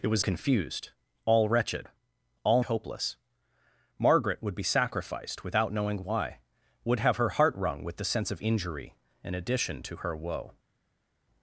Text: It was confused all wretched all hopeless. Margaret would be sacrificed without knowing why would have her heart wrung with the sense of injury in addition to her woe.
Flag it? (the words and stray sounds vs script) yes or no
no